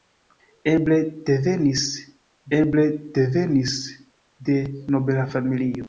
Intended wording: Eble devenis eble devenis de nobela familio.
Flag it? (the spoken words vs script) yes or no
no